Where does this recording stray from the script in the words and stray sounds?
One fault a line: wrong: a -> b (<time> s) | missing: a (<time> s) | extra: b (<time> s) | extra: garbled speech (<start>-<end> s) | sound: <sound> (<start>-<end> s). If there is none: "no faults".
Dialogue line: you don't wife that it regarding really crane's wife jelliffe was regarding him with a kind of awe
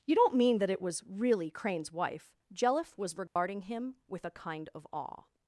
wrong: wife -> mean (0.3 s)
wrong: regarding -> was (0.8 s)
sound: dropout (3.3-3.4 s)